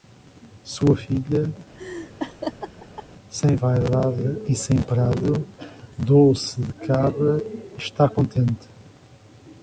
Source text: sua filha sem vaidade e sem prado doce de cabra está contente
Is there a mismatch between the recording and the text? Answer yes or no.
no